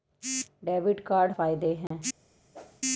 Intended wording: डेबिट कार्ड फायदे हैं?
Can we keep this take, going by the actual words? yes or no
yes